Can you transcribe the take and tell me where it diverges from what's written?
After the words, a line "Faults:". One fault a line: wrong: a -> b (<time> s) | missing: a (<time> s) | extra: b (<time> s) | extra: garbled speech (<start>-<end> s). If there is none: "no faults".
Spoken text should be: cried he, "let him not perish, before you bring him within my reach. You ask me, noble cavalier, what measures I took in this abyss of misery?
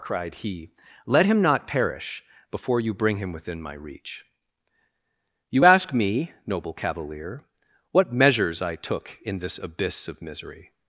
cried he, "let him not perish, before you bring him within my reach. You ask me, noble cavalier, what measures I took in this abyss of misery?
Faults:
no faults